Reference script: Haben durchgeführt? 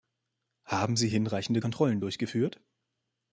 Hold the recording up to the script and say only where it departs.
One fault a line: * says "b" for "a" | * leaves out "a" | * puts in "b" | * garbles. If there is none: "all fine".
* puts in "sie hinreichende Kontrollen"